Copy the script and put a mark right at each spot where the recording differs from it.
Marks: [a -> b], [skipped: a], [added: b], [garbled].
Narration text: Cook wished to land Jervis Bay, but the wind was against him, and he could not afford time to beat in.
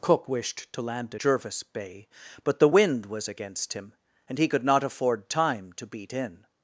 Cook wished to land Jervis Bay, but the wind was against him, and he could not afford time to beat in.